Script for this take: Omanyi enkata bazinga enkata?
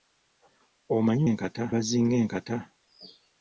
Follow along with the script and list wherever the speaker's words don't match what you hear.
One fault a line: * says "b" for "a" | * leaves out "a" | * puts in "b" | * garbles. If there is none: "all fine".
all fine